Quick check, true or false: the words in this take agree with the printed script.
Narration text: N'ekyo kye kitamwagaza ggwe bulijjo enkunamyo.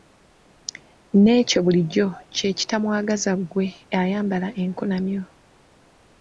false